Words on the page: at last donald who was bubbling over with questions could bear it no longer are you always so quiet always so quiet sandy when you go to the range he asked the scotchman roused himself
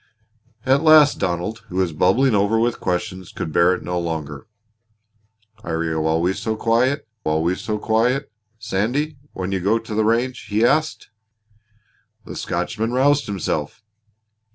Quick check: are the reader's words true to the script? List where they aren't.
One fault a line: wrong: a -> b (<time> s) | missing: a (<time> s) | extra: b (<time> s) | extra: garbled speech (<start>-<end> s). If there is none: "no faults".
no faults